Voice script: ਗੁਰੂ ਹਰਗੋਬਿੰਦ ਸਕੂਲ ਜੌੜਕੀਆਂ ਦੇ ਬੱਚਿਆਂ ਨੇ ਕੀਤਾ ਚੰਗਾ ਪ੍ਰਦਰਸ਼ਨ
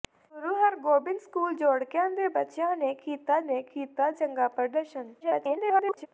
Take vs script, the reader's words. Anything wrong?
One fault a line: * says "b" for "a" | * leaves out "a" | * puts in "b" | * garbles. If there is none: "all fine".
* puts in "ਨੇ ਕੀਤਾ"
* garbles